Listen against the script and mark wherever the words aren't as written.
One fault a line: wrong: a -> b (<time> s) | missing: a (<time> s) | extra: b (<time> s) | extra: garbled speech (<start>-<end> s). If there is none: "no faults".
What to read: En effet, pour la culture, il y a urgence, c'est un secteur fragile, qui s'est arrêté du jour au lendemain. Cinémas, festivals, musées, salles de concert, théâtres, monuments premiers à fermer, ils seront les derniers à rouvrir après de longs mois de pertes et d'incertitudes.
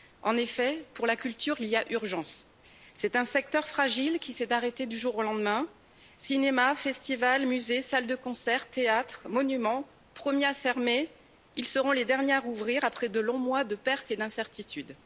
no faults